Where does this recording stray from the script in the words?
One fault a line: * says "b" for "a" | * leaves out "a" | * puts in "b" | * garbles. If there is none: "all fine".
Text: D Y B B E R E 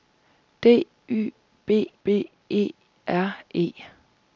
all fine